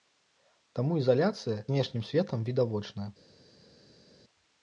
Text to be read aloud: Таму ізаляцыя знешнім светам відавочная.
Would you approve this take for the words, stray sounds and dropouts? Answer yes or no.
yes